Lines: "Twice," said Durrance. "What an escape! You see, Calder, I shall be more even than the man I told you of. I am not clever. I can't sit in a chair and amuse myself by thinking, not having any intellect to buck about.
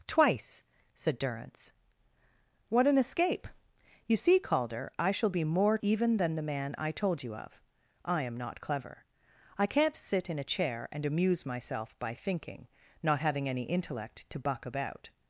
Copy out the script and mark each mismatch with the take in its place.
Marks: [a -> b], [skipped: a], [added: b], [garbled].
"Twice," said Durrance. "What an escape! You see, Calder, I shall be more even than the man I told you of. I am not clever. I can't sit in a chair and amuse myself by thinking, not having any intellect to buck about.